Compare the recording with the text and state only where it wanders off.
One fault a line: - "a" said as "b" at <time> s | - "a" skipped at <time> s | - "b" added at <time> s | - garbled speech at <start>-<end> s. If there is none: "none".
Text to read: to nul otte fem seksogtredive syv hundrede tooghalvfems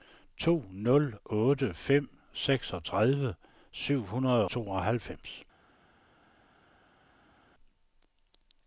none